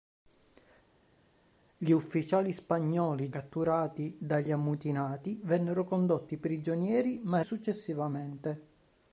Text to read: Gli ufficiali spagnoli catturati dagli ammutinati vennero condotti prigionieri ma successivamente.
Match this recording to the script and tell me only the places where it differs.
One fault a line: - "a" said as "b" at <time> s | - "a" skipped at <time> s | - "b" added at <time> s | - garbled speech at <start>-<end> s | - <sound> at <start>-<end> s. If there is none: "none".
none